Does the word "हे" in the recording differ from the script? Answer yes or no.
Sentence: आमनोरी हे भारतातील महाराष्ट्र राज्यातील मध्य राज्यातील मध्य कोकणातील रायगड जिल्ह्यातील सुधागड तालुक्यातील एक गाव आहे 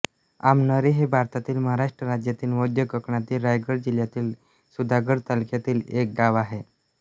no